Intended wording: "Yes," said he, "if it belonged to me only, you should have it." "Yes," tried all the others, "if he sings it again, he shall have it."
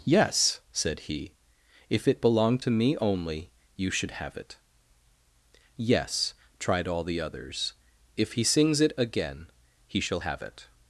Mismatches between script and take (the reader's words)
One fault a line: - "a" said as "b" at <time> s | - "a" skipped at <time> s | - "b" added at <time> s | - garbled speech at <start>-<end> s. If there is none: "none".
none